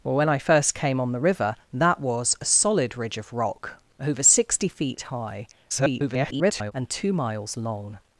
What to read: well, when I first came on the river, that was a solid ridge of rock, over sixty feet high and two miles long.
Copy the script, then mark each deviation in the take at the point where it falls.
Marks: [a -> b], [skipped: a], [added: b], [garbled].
well, when I first came on the river, that was a solid ridge of rock, over sixty feet high [garbled] and two miles long.